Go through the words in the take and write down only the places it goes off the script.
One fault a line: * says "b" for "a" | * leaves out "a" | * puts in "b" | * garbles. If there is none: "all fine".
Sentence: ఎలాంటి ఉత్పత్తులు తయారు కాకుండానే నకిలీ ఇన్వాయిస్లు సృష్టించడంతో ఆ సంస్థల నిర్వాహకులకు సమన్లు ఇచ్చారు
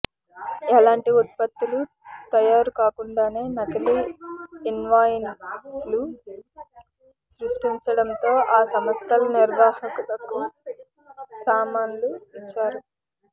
all fine